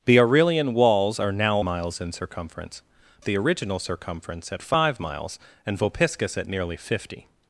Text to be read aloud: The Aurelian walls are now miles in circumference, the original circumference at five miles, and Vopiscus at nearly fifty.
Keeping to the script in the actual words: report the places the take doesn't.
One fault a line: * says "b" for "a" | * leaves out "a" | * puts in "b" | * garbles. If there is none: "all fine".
all fine